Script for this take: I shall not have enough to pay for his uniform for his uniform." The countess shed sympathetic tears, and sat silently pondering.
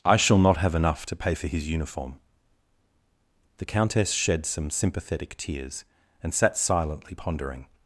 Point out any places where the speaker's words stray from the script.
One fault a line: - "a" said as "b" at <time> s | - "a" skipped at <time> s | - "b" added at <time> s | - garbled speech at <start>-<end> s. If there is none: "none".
- "for his uniform" skipped at 2.2 s
- "some" added at 4.4 s